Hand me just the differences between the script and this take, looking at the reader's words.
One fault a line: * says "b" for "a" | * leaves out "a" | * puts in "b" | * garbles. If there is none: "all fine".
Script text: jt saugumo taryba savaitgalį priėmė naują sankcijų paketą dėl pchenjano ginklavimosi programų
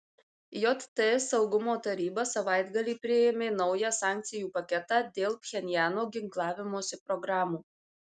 all fine